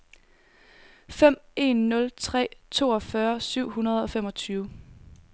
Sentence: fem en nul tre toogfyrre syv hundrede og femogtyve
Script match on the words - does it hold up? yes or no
yes